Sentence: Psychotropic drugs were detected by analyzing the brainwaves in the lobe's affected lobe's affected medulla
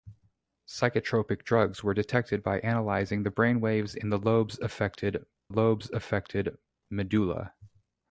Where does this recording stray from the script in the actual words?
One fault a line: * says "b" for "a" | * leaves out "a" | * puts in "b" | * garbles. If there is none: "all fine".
all fine